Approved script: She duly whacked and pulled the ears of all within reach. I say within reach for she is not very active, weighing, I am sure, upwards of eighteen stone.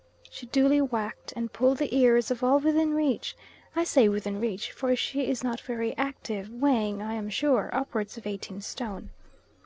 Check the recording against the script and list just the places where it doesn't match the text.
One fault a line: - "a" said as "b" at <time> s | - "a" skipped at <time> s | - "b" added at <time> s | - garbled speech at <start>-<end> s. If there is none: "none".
none